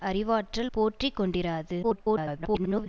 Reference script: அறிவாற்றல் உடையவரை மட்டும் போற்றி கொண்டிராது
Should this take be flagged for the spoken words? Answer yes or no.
yes